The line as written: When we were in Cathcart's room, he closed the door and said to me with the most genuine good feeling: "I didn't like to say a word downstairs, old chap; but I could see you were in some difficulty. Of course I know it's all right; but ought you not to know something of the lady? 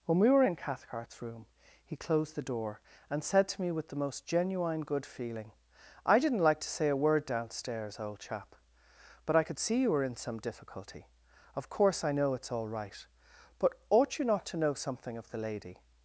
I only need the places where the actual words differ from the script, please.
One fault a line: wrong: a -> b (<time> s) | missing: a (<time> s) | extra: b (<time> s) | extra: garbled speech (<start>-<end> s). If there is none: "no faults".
no faults